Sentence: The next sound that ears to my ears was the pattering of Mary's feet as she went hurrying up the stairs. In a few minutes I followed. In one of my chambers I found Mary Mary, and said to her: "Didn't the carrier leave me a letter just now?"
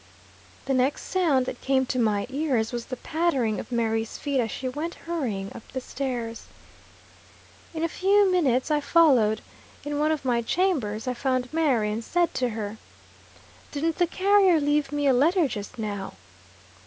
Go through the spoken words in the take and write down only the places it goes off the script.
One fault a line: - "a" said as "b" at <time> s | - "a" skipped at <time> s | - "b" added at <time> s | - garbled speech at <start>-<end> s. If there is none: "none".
- "ears" said as "came" at 1.6 s
- "Mary" skipped at 11.9 s